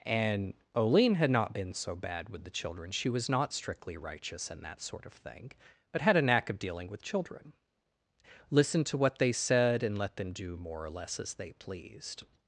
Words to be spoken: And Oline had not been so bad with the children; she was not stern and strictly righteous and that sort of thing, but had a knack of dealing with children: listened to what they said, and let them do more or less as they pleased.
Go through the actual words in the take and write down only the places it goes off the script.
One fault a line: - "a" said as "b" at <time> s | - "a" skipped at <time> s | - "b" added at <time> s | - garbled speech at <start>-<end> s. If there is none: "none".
- "stern and" skipped at 3.5 s